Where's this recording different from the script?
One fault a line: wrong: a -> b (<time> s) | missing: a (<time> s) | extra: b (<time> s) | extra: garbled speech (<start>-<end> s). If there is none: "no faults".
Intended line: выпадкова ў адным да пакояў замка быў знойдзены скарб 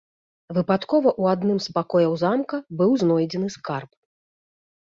wrong: да -> з (1.6 s)